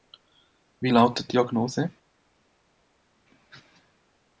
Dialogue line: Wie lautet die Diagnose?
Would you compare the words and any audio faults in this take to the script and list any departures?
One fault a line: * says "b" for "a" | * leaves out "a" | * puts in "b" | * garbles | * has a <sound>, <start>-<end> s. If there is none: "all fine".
* leaves out "die"